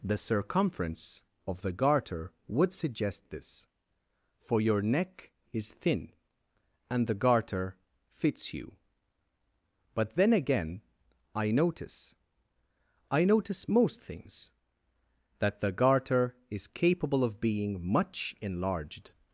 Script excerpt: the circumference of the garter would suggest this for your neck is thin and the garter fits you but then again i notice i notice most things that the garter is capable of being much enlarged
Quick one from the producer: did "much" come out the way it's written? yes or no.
yes